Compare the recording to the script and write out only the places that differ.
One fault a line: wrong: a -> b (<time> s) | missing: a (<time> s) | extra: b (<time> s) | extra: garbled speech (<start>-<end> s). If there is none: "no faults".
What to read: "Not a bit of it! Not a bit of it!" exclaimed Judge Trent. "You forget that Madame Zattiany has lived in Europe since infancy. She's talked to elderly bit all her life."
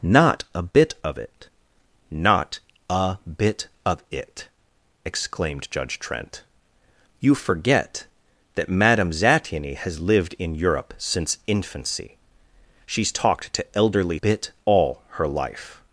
no faults